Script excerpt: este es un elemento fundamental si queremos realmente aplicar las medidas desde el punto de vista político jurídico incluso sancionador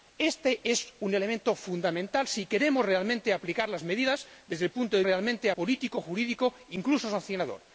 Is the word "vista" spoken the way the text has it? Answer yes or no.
no